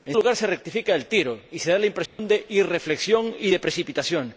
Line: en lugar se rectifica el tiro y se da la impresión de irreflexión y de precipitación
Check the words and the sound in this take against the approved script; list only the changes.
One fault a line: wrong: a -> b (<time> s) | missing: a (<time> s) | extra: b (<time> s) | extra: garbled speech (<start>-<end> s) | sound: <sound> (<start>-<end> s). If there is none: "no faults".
sound: dropout (2.1-2.2 s)